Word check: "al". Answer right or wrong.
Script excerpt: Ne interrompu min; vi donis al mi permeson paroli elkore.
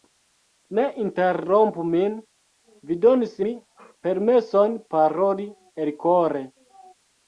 wrong